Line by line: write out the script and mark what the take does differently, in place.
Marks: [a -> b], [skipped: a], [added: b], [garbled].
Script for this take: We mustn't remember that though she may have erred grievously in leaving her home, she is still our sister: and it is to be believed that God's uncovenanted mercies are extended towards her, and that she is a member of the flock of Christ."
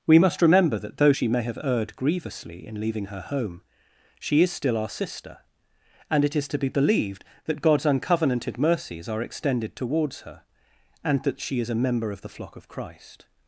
We [mustn't -> must] remember that though she may have erred grievously in leaving her home, she is still our sister: and it is to be believed that God's uncovenanted mercies are extended towards her, and that she is a member of the flock of Christ."